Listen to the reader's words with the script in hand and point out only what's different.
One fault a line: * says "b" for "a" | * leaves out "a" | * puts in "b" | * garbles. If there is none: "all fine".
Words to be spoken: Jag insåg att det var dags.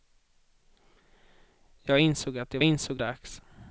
* says "insåg" for "var"